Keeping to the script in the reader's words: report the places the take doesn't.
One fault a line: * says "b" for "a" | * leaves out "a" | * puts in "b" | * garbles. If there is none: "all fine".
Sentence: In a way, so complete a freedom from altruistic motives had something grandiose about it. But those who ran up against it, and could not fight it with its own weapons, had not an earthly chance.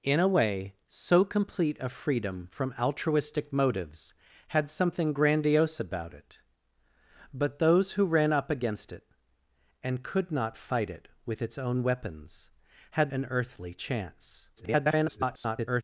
* leaves out "not"
* garbles